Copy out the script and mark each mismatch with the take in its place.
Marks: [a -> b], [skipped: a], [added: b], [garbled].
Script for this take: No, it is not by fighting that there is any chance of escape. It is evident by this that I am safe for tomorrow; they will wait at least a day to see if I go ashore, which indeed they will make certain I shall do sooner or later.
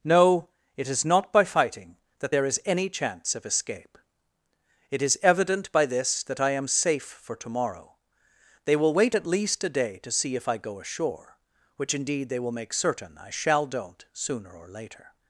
No, it is not by fighting that there is any chance of escape. It is evident by this that I am safe for tomorrow; they will wait at least a day to see if I go ashore, which indeed they will make certain I shall [do -> don't] sooner or later.